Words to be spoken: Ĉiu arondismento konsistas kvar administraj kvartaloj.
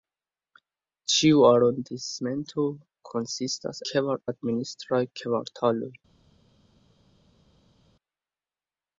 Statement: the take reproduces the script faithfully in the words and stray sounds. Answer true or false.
true